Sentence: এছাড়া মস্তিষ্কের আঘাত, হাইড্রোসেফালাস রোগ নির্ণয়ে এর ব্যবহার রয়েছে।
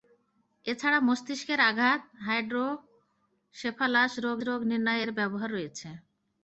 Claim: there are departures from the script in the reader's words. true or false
true